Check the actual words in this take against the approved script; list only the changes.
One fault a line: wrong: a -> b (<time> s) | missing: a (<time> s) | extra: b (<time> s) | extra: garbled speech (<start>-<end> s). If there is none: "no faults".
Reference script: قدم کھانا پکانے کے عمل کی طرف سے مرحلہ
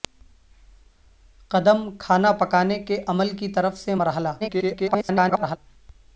extra: garbled speech (4.4-5.6 s)